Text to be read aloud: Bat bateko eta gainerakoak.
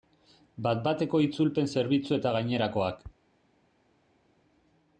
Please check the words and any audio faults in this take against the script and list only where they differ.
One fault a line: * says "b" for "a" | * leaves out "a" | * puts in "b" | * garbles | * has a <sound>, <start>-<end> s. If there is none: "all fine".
* puts in "itzulpen zerbitzu"